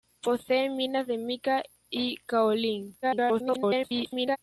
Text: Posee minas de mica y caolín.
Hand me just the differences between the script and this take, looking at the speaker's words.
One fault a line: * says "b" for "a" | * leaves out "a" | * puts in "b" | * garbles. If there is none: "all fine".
* garbles